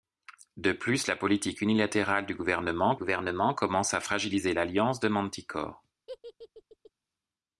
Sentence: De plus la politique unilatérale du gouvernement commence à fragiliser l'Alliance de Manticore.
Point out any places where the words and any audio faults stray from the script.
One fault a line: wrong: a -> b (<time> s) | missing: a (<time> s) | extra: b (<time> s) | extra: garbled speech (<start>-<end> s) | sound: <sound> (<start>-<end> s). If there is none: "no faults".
extra: gouvernement (2.9 s)
sound: laugh (6.1-6.9 s)